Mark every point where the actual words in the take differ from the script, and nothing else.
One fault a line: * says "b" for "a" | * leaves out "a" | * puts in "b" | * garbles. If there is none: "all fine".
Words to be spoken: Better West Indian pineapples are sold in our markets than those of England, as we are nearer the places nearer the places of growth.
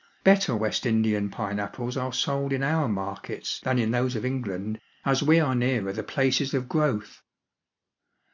* puts in "in"
* leaves out "nearer the places"